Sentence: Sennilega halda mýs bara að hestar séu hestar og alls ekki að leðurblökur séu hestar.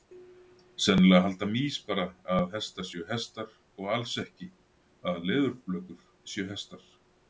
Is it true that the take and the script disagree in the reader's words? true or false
false